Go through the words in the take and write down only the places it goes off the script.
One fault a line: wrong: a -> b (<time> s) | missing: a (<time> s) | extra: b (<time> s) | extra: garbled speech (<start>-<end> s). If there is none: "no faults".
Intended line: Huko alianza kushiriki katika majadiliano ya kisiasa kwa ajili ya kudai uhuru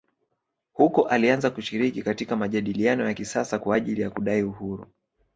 no faults